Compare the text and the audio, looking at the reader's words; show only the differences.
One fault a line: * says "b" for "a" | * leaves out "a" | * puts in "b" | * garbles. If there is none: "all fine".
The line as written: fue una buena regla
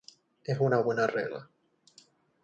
* says "es" for "fue"